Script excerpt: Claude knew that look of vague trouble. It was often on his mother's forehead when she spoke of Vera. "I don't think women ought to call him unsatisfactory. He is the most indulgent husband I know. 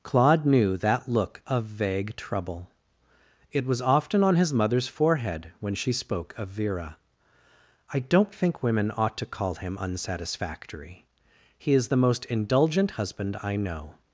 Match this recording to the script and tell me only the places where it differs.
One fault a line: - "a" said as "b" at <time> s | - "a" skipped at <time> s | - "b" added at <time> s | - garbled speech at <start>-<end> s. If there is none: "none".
none